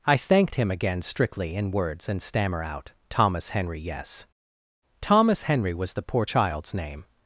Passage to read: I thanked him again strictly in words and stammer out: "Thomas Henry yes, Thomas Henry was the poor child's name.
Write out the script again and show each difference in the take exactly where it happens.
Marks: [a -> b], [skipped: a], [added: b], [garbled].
I thanked him again strictly in words and stammer out: "Thomas Henry yes, Thomas Henry was the poor child's name.